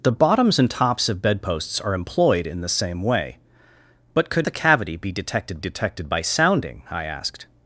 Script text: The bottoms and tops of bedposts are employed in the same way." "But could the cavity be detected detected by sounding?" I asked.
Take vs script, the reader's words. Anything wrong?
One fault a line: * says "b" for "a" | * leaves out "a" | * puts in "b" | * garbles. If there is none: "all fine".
all fine